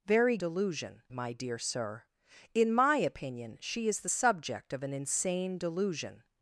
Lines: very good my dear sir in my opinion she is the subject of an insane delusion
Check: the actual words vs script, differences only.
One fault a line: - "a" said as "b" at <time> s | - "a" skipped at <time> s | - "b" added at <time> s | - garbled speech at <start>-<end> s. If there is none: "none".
- "good" said as "delusion" at 0.4 s